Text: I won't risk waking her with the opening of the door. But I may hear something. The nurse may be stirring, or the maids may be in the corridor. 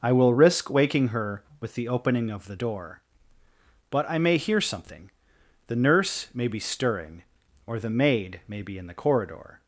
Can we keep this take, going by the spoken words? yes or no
no